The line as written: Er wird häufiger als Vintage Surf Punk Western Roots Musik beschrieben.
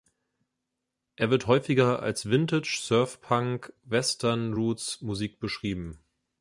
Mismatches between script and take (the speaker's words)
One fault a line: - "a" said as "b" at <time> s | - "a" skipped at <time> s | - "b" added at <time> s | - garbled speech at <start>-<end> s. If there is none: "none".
none